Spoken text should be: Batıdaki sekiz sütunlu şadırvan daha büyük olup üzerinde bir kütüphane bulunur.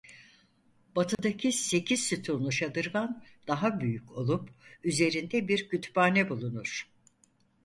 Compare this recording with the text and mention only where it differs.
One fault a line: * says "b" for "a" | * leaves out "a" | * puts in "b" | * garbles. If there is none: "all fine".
all fine